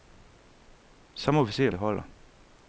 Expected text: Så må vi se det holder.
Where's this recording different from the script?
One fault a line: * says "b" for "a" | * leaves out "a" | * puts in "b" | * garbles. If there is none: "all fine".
all fine